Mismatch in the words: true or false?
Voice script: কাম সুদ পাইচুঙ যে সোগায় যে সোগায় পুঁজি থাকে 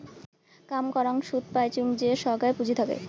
true